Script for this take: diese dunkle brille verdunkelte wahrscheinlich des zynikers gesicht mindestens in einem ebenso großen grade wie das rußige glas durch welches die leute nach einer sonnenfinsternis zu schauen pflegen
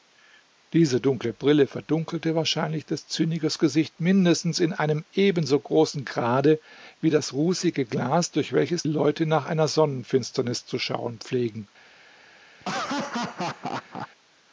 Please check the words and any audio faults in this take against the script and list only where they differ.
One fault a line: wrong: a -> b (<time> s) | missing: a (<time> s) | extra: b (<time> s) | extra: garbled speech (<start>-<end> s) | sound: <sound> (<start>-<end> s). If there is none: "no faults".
missing: die (8.8 s)
sound: laugh (12.6-14.1 s)